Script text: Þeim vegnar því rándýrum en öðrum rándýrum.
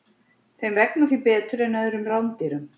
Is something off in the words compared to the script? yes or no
yes